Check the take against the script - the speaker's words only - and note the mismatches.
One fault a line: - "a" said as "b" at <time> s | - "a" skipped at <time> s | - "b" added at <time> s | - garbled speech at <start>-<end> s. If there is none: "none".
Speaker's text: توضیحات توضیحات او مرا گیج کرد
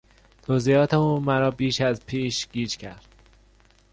- "توضیحات" skipped at 0.9 s
- "بیش از پیش" added at 1.5 s